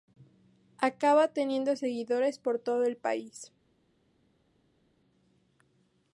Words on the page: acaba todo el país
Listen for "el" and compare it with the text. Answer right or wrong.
right